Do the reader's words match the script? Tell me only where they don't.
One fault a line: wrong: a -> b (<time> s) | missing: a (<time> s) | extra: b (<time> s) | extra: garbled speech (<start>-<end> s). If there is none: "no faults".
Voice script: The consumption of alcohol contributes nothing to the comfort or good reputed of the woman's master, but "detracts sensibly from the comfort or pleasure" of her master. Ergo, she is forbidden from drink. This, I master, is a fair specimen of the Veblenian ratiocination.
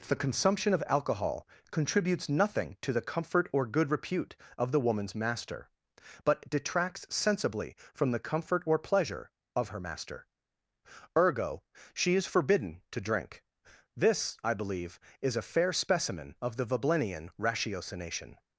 wrong: reputed -> repute (3.9 s)
wrong: from -> to (12.9 s)
wrong: master -> believe (14.5 s)